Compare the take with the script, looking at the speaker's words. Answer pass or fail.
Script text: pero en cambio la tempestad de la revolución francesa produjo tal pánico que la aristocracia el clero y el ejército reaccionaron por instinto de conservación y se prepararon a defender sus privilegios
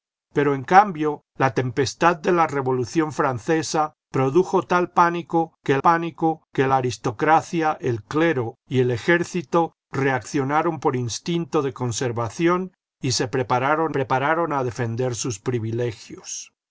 fail